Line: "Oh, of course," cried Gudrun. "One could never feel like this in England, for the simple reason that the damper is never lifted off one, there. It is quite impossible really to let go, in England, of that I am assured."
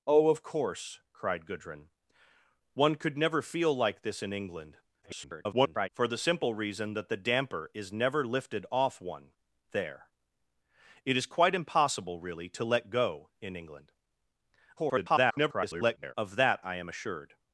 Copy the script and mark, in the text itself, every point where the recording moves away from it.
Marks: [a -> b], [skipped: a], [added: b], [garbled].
"Oh, of course," cried Gudrun. "One could never feel like this in England, [garbled] for the simple reason that the damper is never lifted off one, there. It is quite impossible really to let go, in England, [garbled] of that I am assured."